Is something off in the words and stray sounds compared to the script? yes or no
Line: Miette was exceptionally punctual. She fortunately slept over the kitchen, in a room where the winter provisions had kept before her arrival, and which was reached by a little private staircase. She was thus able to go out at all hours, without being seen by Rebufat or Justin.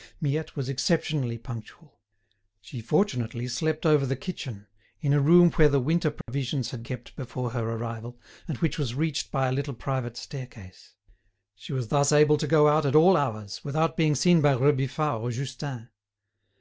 yes